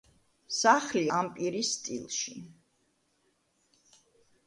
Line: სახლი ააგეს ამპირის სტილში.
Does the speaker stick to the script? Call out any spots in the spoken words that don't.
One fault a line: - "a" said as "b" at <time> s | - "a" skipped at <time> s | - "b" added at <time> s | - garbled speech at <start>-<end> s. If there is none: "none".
- "ააგეს" skipped at 1.0 s